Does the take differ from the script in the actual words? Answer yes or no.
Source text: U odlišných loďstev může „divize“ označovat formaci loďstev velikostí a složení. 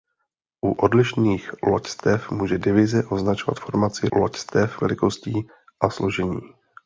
no